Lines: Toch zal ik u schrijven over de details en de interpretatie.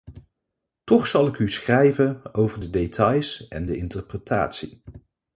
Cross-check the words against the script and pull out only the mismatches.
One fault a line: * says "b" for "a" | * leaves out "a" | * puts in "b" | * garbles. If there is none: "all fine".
all fine